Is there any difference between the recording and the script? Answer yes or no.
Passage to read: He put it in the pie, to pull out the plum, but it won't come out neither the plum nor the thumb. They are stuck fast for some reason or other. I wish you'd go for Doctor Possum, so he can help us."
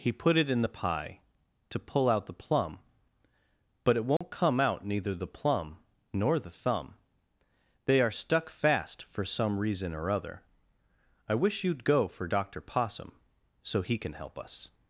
no